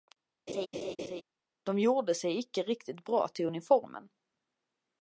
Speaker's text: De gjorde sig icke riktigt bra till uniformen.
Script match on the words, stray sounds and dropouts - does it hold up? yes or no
no